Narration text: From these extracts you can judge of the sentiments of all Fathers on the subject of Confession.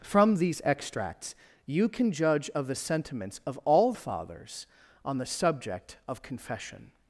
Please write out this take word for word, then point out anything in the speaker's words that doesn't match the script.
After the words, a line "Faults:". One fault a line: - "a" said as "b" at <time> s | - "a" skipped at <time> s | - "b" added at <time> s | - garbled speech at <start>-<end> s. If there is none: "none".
From these extracts you can judge of the sentiments of all Fathers on the subject of Confession.
Faults:
none